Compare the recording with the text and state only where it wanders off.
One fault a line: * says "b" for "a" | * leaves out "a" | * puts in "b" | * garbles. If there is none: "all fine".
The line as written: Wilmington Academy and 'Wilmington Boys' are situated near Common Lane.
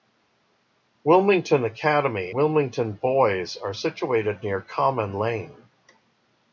* leaves out "and"